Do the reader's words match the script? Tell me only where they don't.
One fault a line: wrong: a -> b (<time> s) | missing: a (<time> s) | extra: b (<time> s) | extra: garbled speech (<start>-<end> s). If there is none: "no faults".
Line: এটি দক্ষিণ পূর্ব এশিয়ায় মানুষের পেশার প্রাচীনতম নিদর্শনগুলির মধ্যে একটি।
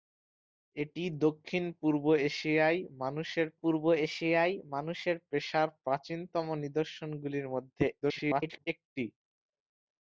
extra: পূর্ব এশিয়ায় মানুষের (3.6 s)
extra: garbled speech (8.0-8.7 s)